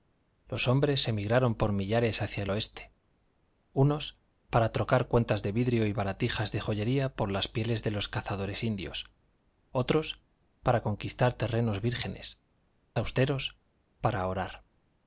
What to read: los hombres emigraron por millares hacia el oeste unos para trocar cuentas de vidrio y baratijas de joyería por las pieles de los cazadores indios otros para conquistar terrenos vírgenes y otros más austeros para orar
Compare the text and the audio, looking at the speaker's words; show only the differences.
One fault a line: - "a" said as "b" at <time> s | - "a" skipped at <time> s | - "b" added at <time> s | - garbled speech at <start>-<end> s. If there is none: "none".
- "y otros más" skipped at 12.4 s